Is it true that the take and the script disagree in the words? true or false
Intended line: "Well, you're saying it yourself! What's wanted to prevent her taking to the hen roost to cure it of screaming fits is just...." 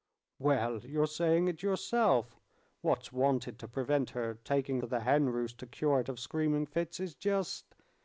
false